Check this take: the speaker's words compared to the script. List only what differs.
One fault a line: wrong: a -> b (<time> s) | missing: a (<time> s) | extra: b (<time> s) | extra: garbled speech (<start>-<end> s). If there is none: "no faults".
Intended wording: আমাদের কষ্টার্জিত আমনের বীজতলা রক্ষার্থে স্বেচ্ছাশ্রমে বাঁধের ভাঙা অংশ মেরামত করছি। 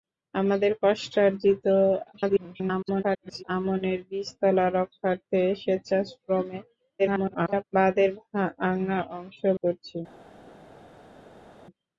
extra: garbled speech (2.1-3.4 s)
extra: garbled speech (7.0-7.6 s)
missing: মেরামত (9.4 s)